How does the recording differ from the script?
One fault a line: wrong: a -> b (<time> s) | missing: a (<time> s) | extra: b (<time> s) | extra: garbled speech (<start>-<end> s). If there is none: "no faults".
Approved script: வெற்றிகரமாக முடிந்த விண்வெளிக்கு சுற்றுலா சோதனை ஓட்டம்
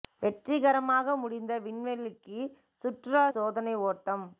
no faults